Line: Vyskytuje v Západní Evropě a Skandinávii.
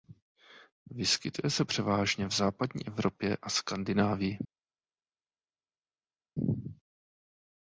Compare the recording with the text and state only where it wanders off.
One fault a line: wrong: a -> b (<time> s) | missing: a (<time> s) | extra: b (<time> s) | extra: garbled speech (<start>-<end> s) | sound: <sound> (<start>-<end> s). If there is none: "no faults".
extra: se převážně (1.5 s)